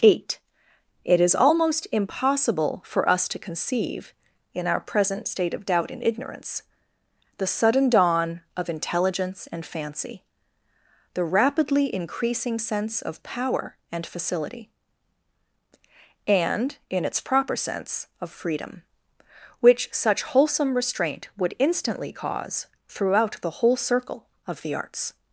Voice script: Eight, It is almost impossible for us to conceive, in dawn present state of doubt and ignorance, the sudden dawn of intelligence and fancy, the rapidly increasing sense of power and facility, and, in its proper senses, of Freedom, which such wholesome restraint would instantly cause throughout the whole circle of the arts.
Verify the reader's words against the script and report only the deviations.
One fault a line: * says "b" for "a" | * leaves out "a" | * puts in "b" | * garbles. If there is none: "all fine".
* says "our" for "dawn"
* says "sense" for "senses"